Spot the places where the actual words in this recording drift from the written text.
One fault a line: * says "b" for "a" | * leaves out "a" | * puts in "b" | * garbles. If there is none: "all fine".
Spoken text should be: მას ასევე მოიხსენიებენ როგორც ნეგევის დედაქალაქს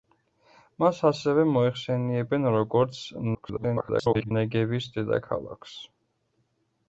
* garbles